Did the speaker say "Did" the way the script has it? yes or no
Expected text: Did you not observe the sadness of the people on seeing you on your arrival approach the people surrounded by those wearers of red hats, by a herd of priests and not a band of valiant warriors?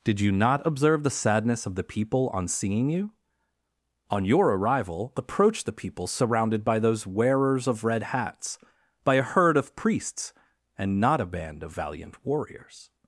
yes